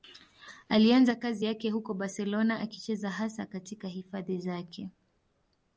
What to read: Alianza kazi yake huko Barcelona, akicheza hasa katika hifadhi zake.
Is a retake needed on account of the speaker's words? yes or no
no